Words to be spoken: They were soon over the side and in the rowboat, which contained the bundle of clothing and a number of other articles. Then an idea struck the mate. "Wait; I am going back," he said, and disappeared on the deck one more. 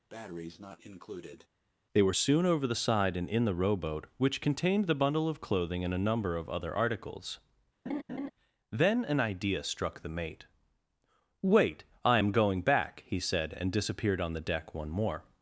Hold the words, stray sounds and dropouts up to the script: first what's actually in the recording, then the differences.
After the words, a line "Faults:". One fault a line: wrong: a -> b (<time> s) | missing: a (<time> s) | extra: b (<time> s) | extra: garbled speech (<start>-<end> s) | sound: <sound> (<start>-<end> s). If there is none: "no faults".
They were soon over the side and in the rowboat, which contained the bundle of clothing and a number of other articles. Then an idea struck the mate. "Wait; I am going back," he said, and disappeared on the deck one more.
Faults:
sound: breath (0.1-1.5 s)
sound: laugh (7.9-8.3 s)